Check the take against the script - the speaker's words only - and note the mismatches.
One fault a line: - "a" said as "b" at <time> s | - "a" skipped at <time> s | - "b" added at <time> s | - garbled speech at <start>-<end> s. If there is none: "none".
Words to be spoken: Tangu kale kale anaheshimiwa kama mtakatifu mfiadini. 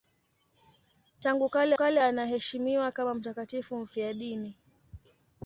none